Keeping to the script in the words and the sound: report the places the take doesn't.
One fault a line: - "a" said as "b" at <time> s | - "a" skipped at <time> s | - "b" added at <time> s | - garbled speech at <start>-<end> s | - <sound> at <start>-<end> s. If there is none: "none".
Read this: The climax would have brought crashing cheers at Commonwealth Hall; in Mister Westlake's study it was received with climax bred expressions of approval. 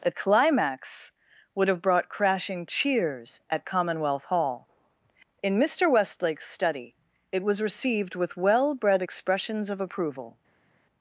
- "climax" said as "well" at 8.3 s